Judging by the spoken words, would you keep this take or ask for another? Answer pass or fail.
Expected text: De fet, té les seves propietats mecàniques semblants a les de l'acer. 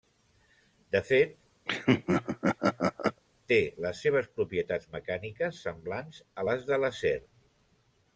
pass